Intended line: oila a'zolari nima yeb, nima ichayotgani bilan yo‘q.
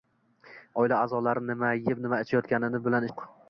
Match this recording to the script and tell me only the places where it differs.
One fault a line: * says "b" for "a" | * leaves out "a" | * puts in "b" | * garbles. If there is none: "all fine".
all fine